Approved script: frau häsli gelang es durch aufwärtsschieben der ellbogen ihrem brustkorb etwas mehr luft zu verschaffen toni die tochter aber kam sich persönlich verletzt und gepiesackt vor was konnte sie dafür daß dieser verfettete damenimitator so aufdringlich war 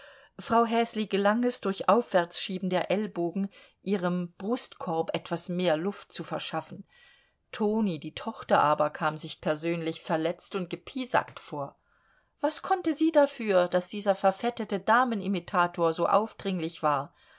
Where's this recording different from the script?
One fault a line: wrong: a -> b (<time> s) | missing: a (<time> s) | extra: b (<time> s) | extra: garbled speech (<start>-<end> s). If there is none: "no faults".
no faults